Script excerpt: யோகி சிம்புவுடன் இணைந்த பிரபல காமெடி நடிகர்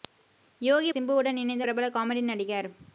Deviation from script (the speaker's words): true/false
false